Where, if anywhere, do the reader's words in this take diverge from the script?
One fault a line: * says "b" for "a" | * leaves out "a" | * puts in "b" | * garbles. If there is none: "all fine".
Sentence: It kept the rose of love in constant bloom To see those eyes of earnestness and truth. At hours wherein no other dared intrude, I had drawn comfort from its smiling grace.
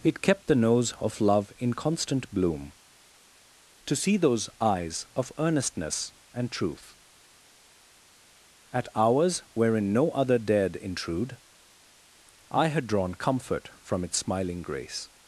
* says "nose" for "rose"